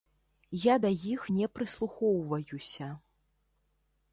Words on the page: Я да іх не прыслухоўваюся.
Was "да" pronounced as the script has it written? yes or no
yes